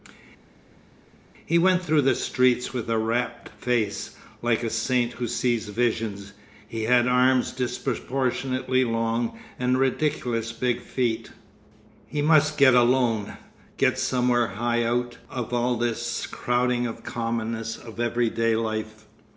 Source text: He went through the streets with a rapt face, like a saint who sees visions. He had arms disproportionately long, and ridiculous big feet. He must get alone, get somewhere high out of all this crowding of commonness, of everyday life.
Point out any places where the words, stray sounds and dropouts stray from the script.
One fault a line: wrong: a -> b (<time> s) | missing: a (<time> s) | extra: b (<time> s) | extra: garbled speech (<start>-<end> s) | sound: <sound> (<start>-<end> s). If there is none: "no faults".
no faults